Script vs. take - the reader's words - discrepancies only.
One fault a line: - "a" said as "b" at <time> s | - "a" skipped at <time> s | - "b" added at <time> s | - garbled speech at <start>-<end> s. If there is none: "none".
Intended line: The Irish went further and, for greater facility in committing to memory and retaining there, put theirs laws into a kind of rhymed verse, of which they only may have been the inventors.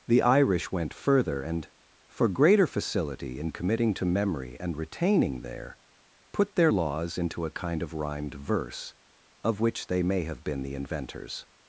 - "theirs" said as "their" at 6.5 s
- "only" skipped at 10.0 s